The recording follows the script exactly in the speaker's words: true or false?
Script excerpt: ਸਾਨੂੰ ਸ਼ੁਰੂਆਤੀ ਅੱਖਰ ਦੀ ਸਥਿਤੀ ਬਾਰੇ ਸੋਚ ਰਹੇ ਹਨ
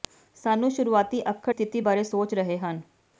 false